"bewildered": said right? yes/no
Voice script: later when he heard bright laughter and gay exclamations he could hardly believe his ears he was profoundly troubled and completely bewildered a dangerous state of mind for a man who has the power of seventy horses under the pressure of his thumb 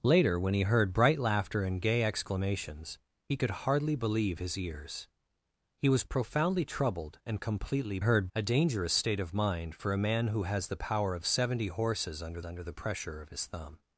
no